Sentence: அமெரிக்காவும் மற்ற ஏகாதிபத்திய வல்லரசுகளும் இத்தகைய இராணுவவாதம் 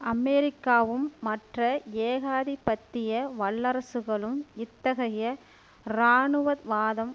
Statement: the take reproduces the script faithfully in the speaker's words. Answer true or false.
true